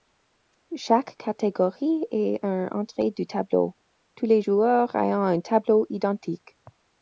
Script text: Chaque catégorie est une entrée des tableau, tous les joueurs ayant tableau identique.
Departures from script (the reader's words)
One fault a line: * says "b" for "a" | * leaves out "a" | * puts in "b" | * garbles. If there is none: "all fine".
* says "du" for "des"
* puts in "un"